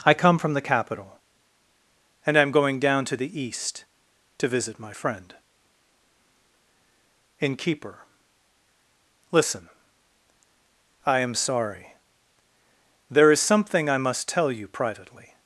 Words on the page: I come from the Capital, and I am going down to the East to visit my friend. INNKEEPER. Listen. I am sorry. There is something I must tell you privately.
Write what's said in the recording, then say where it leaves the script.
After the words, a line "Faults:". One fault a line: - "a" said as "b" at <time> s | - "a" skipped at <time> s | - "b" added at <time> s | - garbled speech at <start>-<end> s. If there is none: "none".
I come from the Capital, and I am going down to the East to visit my friend. INNKEEPER. Listen. I am sorry. There is something I must tell you privately.
Faults:
none